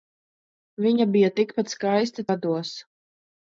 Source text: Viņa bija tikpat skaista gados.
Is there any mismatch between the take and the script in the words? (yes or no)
no